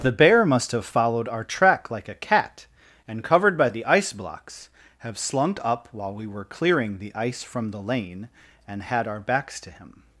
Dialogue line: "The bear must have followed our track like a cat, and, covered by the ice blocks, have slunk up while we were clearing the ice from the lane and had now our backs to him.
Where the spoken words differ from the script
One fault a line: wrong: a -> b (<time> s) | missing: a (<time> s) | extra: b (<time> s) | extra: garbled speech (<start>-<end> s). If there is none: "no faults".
missing: now (9.1 s)